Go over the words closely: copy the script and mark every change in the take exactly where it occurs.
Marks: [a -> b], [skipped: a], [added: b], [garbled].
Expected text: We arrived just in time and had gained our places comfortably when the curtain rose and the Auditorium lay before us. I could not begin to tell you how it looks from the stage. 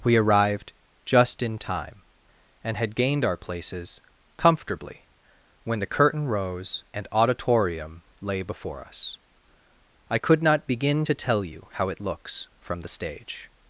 We arrived just in time and had gained our places comfortably when the curtain rose and [skipped: the] Auditorium lay before us. I could not begin to tell you how it looks from the stage.